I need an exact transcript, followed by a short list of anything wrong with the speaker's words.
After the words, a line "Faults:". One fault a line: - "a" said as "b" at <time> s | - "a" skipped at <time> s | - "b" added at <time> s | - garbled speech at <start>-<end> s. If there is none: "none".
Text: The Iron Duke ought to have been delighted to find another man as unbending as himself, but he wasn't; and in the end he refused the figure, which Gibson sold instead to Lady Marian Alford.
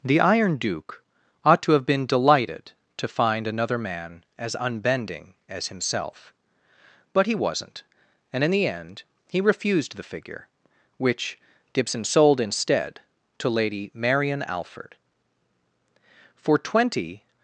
The Iron Duke ought to have been delighted to find another man as unbending as himself, but he wasn't; and in the end he refused the figure, which Gibson sold instead to Lady Marian Alford. For twenty
Faults:
- "For twenty" added at 16.4 s